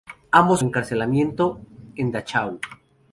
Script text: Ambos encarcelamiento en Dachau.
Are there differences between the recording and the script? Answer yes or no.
no